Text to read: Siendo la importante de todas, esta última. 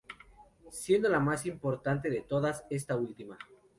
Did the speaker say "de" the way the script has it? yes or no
yes